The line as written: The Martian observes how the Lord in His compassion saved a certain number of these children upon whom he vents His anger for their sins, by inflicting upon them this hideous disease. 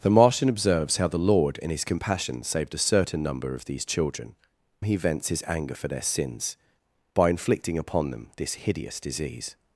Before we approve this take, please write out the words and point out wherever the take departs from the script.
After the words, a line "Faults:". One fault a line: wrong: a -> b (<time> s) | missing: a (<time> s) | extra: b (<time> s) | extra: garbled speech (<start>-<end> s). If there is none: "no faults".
The Martian observes how the Lord in His compassion saved a certain number of these children he vents His anger for their sins, by inflicting upon them this hideous disease.
Faults:
missing: upon whom (4.3 s)